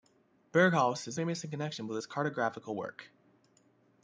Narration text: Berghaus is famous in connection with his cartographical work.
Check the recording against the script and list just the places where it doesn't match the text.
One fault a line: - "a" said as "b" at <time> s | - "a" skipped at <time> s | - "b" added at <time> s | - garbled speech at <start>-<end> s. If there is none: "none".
none